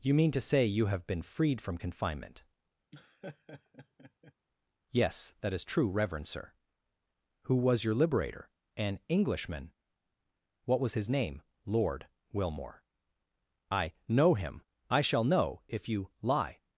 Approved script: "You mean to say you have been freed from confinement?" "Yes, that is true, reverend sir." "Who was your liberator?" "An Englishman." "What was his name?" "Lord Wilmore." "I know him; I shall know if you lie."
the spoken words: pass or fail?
pass